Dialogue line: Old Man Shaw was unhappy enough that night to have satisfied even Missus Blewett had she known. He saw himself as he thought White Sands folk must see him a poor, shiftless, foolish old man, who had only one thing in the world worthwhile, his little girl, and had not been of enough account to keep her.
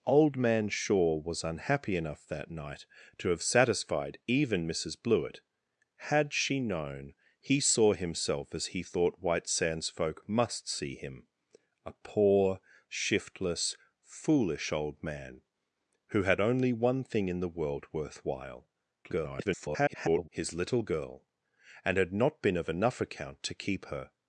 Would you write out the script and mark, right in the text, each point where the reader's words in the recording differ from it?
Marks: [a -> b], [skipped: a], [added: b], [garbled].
Old Man Shaw was unhappy enough that night to have satisfied even Missus Blewett had she known. He saw himself as he thought White Sands folk must see him a poor, shiftless, foolish old man, who had only one thing in the world worthwhile, [garbled] his little girl, and had not been of enough account to keep her.